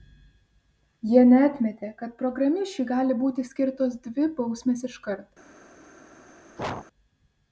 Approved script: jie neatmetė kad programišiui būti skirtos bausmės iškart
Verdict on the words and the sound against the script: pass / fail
fail